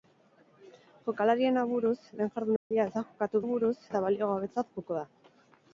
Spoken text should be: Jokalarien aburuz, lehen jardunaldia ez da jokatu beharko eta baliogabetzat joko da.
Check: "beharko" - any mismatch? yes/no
yes